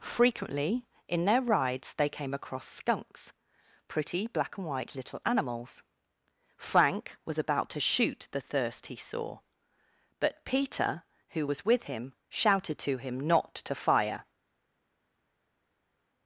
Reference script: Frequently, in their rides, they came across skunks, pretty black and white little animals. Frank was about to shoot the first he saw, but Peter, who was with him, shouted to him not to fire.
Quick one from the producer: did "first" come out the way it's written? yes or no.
no